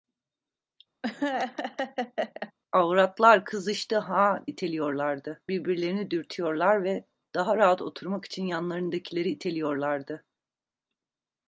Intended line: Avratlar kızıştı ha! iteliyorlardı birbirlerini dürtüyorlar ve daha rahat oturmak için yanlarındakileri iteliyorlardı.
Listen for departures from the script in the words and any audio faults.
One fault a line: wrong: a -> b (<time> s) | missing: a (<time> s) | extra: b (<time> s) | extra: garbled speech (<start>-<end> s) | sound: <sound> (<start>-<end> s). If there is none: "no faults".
sound: laugh (1.0-2.5 s)